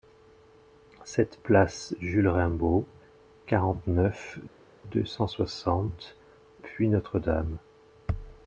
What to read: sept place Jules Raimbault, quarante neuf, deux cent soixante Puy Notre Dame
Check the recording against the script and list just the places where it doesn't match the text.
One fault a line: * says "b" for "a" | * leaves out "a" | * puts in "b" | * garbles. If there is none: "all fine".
all fine